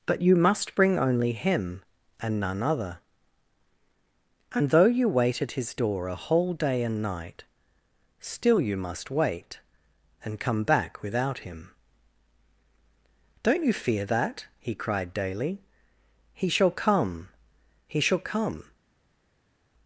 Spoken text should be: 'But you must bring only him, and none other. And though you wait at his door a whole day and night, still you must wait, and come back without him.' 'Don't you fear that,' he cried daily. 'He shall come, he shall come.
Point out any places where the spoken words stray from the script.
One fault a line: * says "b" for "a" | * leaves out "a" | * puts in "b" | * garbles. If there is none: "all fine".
all fine